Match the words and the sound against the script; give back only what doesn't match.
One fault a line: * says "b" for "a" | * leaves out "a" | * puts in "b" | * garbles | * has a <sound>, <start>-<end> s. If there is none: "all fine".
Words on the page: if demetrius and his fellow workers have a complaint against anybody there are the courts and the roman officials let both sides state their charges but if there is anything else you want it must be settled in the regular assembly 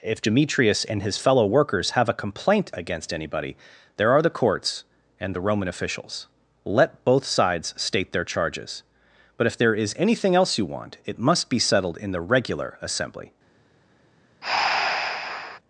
* has a breath, 14.4-15.6 s